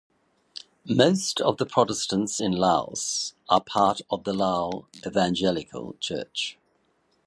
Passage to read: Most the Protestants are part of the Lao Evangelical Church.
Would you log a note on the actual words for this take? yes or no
yes